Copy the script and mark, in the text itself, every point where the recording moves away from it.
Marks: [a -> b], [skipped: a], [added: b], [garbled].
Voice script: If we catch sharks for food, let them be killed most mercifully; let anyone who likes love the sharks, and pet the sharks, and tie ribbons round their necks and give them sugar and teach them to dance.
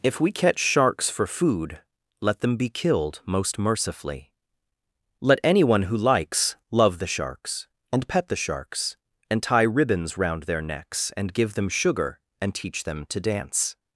If we catch sharks for food, let them be killed most mercifully; let anyone who likes love the sharks, and pet the sharks, and tie ribbons round their necks and give them sugar and teach them to dance.